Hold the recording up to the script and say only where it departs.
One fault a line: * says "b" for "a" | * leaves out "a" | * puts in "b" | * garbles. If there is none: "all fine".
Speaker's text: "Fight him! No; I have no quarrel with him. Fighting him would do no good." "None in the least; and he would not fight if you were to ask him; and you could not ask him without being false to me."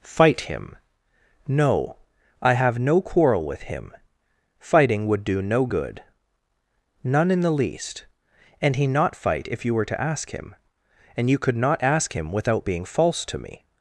* leaves out "him"
* leaves out "would"